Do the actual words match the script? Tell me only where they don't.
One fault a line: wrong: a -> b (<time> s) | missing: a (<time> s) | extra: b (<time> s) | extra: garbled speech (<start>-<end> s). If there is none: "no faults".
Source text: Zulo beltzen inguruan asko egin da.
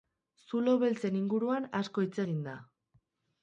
extra: hitz (2.1 s)